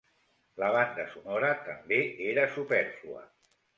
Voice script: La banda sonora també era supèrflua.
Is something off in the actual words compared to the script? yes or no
no